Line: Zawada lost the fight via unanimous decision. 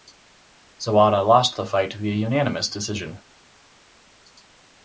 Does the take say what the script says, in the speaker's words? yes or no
yes